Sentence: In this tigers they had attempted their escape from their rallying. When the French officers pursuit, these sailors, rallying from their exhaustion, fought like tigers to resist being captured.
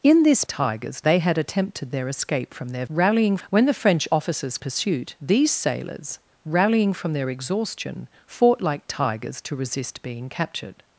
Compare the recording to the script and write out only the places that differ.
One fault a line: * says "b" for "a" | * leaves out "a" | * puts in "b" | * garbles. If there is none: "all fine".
all fine